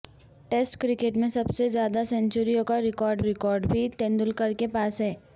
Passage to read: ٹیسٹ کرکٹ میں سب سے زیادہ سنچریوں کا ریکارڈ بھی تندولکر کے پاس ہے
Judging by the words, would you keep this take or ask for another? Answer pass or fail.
fail